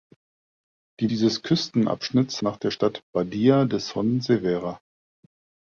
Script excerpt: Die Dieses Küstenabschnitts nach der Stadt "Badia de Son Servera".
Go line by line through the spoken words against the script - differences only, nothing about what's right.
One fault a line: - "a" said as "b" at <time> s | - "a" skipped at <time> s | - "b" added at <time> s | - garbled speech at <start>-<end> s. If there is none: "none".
none